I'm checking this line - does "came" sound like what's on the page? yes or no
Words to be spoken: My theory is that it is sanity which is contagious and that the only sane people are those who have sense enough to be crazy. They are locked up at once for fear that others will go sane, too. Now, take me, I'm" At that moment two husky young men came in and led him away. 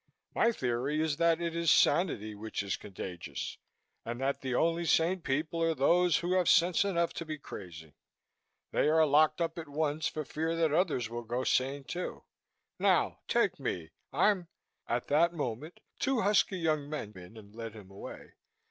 no